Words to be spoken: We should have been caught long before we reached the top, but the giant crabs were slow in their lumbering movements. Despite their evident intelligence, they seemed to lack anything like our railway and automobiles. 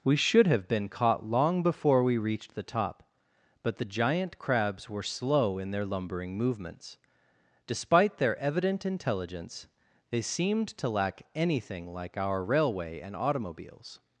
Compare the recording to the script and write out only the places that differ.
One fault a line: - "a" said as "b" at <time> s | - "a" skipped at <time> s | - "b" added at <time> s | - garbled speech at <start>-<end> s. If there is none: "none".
none